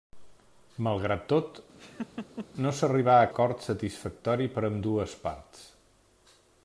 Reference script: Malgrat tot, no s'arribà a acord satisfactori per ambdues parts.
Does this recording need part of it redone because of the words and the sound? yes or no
yes